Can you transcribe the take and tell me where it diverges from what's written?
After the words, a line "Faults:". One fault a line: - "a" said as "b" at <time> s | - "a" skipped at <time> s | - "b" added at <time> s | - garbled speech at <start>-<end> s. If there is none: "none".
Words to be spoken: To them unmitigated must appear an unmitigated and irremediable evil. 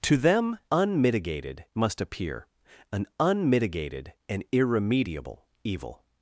To them unmitigated must appear an unmitigated and irremediable evil.
Faults:
none